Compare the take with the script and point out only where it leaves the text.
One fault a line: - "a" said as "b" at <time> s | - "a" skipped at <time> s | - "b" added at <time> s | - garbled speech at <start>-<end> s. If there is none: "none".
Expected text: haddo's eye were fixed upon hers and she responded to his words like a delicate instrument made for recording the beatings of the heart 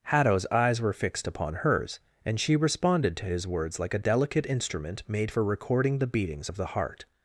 - "eye" said as "eyes" at 0.5 s